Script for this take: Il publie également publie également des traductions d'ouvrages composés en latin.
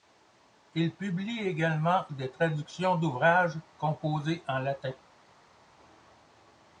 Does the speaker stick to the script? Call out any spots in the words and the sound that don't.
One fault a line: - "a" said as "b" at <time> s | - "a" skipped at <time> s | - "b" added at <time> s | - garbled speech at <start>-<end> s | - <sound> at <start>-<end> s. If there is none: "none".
- "publie également" skipped at 2.1 s